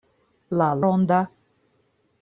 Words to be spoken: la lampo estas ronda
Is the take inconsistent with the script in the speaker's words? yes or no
yes